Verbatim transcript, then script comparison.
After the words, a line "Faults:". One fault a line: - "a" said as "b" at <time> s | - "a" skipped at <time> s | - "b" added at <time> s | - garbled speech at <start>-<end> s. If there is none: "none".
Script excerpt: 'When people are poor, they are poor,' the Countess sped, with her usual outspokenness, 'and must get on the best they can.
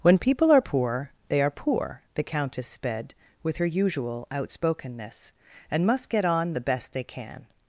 'When people are poor, they are poor,' the Countess sped, with her usual outspokenness, 'and must get on the best they can.
Faults:
none